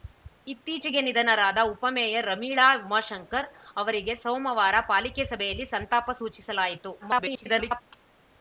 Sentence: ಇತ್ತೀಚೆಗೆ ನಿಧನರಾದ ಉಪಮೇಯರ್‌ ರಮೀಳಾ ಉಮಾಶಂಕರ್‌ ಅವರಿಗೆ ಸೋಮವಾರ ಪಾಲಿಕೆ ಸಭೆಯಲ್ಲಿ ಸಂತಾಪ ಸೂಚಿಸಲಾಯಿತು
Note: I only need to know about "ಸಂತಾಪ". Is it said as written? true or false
true